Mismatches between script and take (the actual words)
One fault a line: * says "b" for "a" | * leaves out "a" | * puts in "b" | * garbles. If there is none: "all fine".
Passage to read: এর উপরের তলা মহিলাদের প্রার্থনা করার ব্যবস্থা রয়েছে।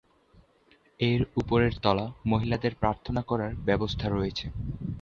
all fine